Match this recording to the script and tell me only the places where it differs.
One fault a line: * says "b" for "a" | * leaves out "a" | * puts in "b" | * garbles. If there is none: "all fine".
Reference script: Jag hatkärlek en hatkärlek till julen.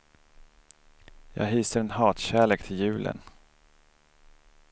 * says "hyser" for "hatkärlek"